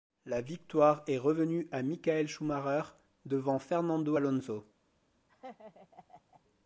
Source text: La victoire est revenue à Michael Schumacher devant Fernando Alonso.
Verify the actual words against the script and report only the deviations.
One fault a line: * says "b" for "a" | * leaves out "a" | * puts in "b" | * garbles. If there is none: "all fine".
all fine